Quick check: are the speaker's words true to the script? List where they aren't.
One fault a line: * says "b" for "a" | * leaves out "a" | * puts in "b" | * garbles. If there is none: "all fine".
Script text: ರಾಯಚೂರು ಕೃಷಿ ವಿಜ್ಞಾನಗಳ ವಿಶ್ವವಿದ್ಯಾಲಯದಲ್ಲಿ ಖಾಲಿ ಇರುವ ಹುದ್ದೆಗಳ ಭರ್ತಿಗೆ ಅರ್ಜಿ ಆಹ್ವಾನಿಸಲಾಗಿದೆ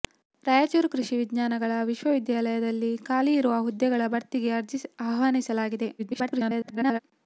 * garbles